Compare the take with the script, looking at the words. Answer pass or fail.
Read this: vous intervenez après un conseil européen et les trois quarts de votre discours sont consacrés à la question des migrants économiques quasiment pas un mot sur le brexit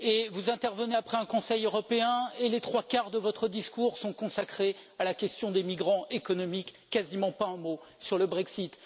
pass